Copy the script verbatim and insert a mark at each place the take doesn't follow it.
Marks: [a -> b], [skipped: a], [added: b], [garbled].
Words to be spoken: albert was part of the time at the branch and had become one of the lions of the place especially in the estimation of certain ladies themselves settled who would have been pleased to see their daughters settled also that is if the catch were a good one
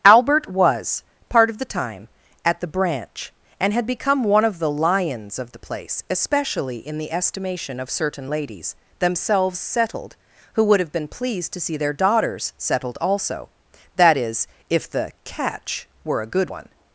albert was part of the time at the branch and had become one of the lions of the place especially in the estimation of certain ladies themselves settled who would have been pleased to see their daughters settled also that is if the catch were a good one